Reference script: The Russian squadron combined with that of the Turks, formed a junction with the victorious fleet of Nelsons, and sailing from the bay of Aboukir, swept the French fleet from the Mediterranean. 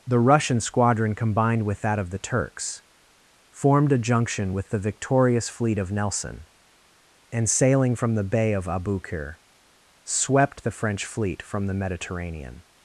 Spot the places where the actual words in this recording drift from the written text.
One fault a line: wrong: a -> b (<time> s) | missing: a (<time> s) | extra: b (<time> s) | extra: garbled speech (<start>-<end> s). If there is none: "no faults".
wrong: Nelsons -> Nelson (5.9 s)